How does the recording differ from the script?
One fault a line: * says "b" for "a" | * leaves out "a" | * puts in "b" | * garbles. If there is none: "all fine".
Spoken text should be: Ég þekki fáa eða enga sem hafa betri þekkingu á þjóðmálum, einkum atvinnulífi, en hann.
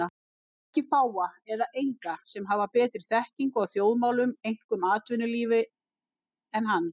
all fine